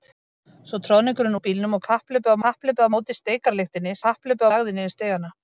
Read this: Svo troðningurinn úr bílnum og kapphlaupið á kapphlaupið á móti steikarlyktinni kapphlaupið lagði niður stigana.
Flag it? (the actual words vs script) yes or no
no